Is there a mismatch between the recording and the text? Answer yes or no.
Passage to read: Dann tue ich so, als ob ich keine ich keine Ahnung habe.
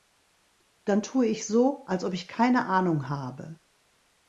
yes